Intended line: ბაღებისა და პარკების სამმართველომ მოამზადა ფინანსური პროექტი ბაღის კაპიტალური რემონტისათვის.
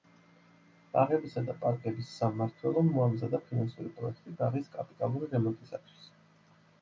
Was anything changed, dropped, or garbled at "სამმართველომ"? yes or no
no